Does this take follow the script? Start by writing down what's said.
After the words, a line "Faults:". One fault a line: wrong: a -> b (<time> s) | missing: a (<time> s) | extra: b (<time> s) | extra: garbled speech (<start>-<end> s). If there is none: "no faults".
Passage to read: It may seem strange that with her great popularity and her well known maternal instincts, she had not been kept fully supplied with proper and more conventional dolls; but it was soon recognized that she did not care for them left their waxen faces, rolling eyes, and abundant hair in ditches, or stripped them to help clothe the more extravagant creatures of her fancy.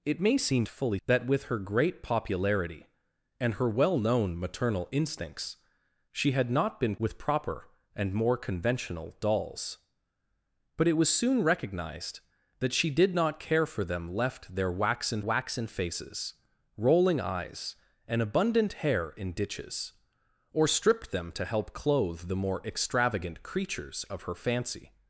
It may seem fully that with her great popularity and her well known maternal instincts, she had not been with proper and more conventional dolls; but it was soon recognized that she did not care for them left their waxen waxen faces, rolling eyes, and abundant hair in ditches, or stripped them to help clothe the more extravagant creatures of her fancy.
Faults:
wrong: strange -> fully (0.7 s)
missing: kept fully supplied (7.0 s)
extra: waxen (15.2 s)